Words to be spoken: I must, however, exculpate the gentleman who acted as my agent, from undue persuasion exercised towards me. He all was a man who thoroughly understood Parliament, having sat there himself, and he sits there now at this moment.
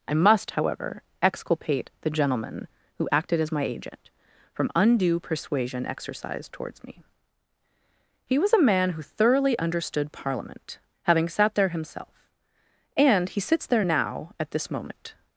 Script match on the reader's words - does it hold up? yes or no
no